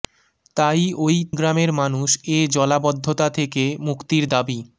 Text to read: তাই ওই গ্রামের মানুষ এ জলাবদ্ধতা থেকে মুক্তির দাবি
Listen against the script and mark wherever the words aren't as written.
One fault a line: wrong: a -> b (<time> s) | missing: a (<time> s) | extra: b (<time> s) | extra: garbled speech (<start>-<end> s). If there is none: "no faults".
no faults